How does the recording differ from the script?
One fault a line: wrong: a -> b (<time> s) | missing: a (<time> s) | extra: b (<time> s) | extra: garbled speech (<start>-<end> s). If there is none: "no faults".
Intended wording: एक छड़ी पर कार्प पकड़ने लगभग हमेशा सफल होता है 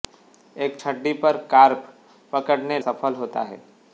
missing: लगभग हमेशा (2.8 s)